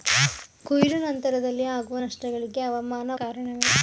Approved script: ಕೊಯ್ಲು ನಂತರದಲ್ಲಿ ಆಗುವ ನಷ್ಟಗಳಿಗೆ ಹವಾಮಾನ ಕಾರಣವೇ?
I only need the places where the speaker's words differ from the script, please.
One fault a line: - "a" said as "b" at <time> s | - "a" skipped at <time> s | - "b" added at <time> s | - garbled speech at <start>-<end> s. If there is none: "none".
none